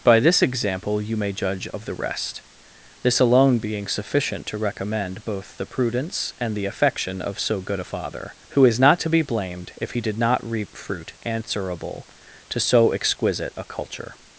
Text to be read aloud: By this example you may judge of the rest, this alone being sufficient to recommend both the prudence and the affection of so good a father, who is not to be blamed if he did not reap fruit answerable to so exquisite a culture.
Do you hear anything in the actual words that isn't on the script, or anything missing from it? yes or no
no